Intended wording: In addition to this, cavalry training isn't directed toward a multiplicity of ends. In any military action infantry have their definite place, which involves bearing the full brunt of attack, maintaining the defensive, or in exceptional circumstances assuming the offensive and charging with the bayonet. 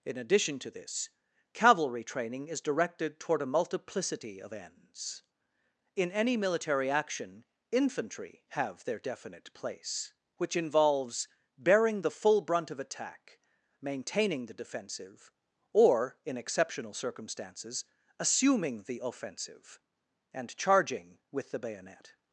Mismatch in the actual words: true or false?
true